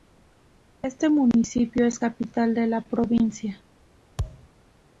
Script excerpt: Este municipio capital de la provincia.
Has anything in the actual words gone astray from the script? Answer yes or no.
yes